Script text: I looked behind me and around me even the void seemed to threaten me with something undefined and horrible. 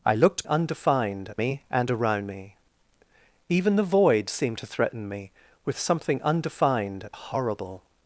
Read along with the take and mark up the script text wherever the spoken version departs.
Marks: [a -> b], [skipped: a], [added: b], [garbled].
I looked [behind -> undefined] me and around me even the void seemed to threaten me with something undefined [skipped: and] horrible.